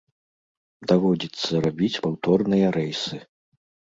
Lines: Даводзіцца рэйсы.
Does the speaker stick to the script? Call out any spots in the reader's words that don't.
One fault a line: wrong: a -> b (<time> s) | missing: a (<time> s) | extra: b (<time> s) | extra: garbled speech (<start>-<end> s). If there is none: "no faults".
extra: рабіць паўторныя (1.6 s)